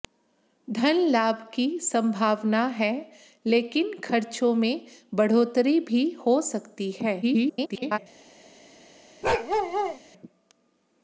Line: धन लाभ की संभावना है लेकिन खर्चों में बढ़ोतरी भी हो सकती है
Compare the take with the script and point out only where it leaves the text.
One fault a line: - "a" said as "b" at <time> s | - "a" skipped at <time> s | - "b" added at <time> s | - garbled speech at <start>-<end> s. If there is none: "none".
- garbled speech at 7.2-8.0 s